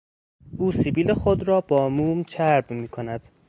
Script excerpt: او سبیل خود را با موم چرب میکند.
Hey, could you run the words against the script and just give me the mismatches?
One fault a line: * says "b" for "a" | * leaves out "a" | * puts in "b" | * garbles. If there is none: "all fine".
all fine